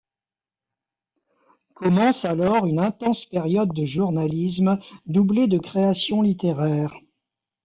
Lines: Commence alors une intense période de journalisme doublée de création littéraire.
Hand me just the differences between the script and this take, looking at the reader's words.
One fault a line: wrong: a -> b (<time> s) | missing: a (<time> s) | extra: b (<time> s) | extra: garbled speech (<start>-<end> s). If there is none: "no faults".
no faults